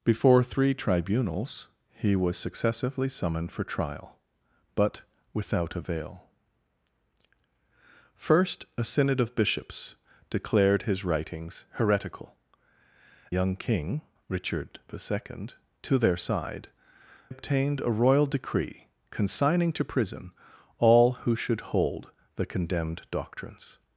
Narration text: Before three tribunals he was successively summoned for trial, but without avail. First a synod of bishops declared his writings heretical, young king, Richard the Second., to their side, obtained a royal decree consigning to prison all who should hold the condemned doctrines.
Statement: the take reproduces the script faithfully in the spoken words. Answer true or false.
true